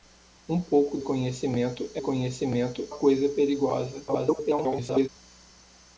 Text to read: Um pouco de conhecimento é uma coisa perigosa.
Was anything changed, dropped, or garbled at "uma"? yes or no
yes